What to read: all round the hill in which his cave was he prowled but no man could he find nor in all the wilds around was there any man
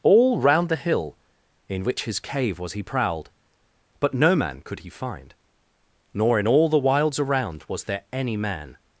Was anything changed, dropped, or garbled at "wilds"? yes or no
no